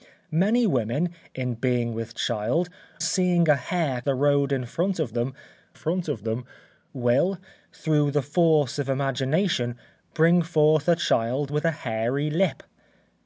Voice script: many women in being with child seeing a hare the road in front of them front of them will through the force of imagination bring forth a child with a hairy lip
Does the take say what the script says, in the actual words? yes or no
yes